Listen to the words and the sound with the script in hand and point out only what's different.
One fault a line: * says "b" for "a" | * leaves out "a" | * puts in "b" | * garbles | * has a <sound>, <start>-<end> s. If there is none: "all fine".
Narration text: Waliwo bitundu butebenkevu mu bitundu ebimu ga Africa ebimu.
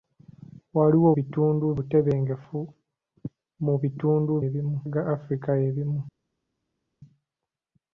all fine